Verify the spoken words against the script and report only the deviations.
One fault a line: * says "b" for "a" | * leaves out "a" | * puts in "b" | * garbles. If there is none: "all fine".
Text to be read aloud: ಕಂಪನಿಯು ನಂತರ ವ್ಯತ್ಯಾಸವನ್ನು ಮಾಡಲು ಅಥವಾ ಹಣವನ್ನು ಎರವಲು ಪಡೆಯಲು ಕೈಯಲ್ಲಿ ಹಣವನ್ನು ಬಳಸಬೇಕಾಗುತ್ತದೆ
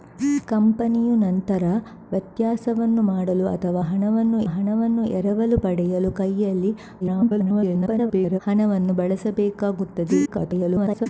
* puts in "ಹಣವನ್ನು"
* garbles
* garbles